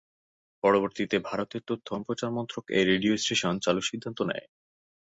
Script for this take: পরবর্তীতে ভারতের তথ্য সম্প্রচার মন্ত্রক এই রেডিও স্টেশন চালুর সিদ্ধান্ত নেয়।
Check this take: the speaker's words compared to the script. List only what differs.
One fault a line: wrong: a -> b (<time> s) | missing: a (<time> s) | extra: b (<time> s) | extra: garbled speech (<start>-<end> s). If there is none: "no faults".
no faults